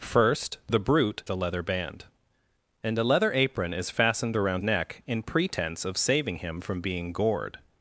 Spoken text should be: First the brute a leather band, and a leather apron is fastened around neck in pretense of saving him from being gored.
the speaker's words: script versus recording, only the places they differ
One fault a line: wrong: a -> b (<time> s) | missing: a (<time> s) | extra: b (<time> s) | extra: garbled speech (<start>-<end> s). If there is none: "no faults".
no faults